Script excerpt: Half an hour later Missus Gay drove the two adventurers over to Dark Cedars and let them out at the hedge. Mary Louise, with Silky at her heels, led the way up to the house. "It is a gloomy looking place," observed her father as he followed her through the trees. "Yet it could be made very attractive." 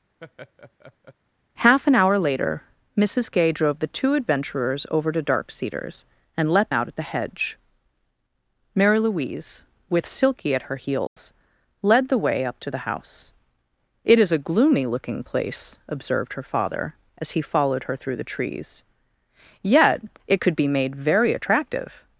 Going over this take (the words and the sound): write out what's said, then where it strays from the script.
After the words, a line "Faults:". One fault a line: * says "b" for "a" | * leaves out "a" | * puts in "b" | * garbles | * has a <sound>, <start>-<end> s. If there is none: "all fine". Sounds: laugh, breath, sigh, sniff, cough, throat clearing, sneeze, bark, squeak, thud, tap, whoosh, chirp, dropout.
Half an hour later Missus Gay drove the two adventurers over to Dark Cedars and let out at the hedge. Mary Louise, with Silky at her heels, led the way up to the house. "It is a gloomy looking place," observed her father as he followed her through the trees. "Yet it could be made very attractive."
Faults:
* has a laugh, 0.2-1.2 s
* leaves out "them"
* has a dropout, 11.1-11.2 s